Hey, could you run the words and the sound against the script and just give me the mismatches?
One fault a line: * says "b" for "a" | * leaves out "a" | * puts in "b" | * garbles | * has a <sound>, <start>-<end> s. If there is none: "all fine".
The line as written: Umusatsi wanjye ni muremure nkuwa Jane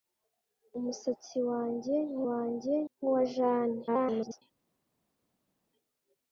* says "wanjye" for "muremure"
* garbles